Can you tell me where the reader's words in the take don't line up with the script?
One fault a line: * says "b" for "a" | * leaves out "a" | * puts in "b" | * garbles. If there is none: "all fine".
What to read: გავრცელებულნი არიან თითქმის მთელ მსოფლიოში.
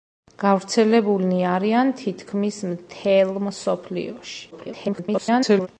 * garbles